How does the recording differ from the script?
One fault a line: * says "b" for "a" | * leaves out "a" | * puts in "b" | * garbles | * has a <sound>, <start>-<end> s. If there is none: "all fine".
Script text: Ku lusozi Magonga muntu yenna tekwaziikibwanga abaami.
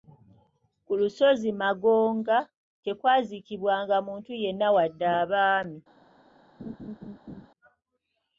* puts in "tekwaziikibwanga"
* says "wadde" for "tekwaziikibwanga"
* has a laugh, 6.6-7.5 s